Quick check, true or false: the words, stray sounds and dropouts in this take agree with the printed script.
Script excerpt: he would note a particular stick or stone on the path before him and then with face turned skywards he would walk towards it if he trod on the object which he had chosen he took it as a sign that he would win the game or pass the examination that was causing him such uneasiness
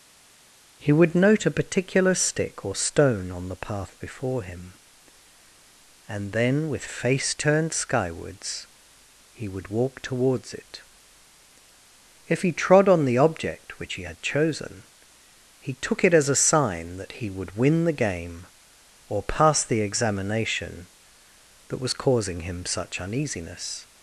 true